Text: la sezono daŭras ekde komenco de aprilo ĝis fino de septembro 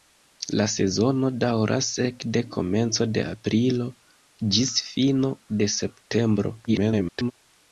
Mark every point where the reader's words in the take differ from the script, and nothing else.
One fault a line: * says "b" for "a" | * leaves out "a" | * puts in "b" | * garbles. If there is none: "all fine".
* garbles